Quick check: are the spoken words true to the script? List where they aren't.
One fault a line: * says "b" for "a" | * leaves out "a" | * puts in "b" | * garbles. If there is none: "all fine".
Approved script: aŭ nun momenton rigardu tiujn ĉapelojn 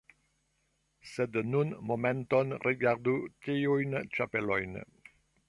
* says "sed" for "aŭ"